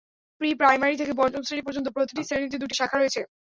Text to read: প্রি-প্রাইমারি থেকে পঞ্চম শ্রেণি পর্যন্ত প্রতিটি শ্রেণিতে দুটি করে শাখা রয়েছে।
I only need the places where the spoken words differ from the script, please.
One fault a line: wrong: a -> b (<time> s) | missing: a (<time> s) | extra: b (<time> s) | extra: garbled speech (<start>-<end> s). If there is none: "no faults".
missing: করে (2.7 s)